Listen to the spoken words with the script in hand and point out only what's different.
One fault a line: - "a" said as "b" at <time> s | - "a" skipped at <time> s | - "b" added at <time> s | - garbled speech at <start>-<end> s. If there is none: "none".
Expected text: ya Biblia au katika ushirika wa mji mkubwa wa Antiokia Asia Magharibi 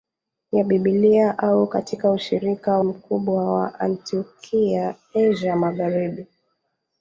- "wa mji" skipped at 2.8 s